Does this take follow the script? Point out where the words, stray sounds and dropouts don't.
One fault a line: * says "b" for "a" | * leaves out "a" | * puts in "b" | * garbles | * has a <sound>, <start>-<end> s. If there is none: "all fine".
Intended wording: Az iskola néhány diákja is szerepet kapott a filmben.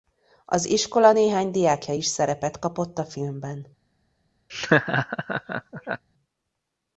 * has a laugh, 4.5-6.0 s